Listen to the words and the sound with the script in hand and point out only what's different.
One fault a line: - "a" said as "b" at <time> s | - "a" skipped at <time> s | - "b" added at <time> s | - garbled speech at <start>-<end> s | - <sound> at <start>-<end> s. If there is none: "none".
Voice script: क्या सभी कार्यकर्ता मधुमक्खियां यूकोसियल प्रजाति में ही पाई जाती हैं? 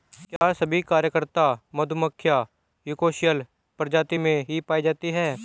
- dropout at 0.4-0.4 s